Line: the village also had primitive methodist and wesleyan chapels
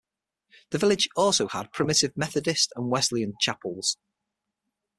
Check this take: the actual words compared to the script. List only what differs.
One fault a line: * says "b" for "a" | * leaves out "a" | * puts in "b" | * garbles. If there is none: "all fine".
all fine